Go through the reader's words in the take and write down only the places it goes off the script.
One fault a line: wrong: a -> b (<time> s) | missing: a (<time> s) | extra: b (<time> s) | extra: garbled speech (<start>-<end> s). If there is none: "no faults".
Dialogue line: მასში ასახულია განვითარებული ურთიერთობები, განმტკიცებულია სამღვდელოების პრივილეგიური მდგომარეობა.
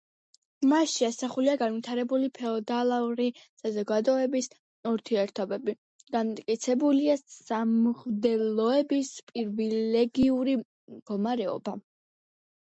extra: ფეოდალური საზოგადოების (2.4 s)